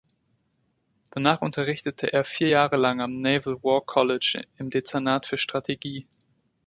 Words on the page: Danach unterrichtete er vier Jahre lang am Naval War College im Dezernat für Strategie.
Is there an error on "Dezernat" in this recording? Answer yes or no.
no